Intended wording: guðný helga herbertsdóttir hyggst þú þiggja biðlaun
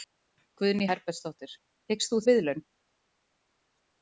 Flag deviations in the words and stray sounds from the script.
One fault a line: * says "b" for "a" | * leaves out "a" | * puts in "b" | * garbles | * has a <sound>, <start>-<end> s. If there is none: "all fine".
* leaves out "helga"
* leaves out "þiggja"